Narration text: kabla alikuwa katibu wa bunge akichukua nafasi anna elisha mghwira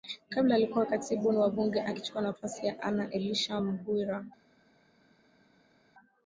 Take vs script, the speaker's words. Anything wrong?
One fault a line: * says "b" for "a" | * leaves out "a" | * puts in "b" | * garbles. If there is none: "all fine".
* puts in "ya"